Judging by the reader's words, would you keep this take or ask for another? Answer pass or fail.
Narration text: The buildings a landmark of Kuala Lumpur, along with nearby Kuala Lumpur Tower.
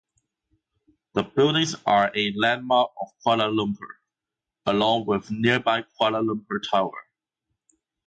fail